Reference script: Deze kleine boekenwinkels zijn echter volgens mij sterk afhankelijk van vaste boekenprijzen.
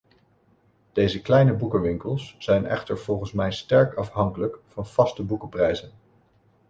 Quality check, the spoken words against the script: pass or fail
pass